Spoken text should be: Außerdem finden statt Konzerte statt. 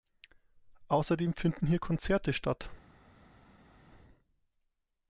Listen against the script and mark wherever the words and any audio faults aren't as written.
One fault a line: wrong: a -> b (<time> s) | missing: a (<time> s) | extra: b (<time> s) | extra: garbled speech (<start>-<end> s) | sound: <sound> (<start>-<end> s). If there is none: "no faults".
wrong: statt -> hier (1.7 s)